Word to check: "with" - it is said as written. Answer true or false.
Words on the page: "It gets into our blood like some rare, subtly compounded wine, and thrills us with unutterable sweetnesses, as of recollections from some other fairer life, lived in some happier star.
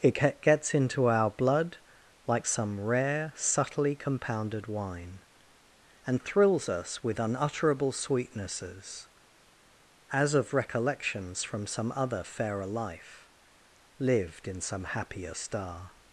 true